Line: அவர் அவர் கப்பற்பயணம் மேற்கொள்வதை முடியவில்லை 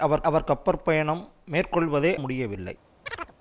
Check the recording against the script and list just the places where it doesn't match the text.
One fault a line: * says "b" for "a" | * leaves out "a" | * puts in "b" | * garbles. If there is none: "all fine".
all fine